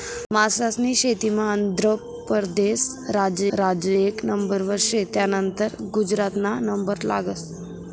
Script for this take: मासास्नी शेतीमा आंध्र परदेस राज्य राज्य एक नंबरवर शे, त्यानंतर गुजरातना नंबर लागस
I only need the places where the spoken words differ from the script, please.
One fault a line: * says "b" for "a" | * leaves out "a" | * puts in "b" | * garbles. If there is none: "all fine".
all fine